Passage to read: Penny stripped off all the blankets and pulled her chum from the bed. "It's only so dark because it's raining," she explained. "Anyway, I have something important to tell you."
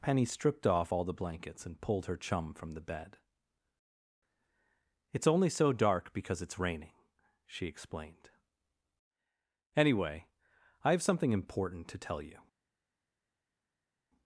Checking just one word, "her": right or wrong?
right